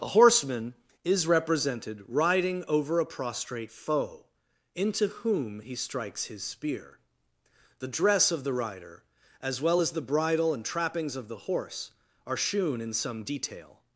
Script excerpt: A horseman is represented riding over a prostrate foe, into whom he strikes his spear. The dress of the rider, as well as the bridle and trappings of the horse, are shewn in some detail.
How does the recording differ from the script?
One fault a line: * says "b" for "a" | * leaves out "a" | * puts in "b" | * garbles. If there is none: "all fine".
all fine